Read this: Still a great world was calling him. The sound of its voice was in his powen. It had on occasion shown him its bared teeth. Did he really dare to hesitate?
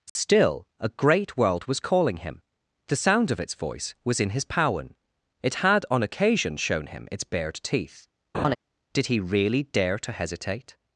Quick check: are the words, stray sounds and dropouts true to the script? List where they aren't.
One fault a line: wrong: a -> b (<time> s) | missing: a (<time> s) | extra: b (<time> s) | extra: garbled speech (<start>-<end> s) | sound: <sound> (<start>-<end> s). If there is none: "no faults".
sound: dropout (0.1-0.2 s)
sound: laugh (8.3-8.6 s)